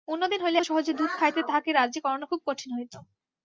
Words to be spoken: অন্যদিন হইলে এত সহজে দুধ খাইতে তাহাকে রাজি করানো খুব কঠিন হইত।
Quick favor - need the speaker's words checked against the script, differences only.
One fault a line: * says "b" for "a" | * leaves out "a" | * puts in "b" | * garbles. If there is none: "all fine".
* leaves out "এত"